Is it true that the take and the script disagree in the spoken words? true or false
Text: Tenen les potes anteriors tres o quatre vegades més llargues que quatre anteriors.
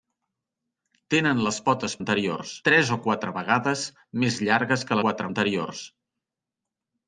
false